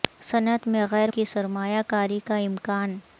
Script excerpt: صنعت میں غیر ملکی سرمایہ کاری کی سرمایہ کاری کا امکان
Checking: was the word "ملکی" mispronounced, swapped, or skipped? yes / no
yes